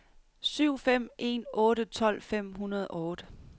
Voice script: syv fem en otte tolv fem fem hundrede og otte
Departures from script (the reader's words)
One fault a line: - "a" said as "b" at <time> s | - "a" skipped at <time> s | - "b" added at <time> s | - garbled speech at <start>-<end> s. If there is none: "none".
- "fem" skipped at 2.5 s